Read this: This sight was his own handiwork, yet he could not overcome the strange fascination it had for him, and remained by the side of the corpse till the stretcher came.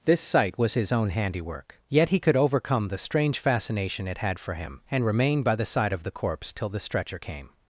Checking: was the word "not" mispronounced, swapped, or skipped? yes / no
yes